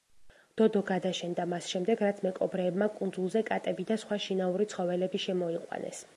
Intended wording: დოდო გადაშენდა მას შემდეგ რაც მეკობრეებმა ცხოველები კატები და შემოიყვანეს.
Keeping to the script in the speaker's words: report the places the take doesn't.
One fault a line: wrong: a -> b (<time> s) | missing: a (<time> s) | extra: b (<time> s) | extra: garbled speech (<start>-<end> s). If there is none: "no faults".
wrong: ცხოველები -> კუნძულზე (3.0 s)
extra: სხვა შინაური ცხოველები (4.0 s)